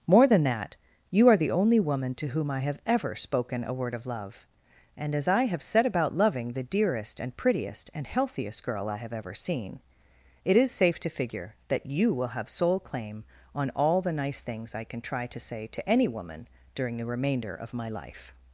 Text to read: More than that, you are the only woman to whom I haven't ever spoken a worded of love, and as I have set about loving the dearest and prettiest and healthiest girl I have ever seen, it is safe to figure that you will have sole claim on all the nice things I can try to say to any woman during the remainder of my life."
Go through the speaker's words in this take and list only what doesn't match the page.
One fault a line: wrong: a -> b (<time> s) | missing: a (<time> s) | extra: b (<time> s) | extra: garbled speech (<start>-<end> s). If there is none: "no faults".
wrong: haven't -> have (2.6 s)
wrong: worded -> word (3.7 s)